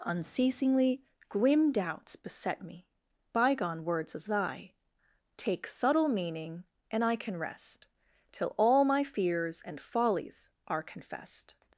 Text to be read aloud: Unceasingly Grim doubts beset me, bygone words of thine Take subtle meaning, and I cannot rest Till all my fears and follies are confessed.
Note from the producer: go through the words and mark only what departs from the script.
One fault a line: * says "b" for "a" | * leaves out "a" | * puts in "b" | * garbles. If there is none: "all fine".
* says "thy" for "thine"
* says "can" for "cannot"